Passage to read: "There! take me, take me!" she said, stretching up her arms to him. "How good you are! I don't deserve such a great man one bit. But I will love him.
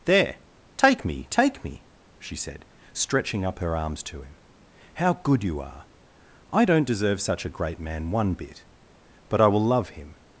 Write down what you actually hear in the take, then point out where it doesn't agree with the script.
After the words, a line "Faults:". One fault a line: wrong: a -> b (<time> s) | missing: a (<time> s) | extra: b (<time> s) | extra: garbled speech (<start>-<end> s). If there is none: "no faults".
"There! take me, take me!" she said, stretching up her arms to him. "How good you are! I don't deserve such a great man one bit. But I will love him.
Faults:
no faults